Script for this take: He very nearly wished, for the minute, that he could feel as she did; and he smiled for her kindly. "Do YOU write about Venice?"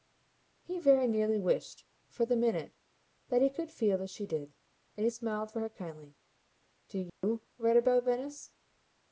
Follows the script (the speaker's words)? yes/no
yes